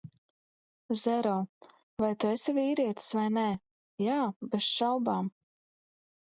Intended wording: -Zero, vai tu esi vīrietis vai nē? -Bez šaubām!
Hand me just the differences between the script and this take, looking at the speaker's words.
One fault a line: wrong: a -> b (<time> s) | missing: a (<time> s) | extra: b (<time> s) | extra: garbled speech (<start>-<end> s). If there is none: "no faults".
extra: Jā (4.1 s)